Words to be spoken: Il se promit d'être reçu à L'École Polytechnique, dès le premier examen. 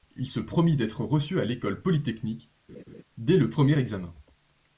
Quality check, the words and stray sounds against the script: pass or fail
fail